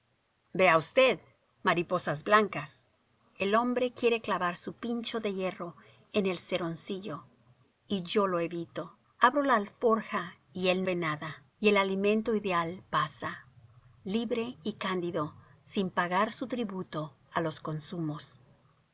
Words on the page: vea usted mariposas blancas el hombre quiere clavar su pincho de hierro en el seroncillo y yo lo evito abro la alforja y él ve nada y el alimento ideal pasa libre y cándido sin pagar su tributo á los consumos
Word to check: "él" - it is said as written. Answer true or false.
true